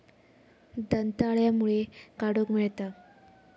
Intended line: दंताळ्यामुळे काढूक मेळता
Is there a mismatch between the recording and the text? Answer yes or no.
no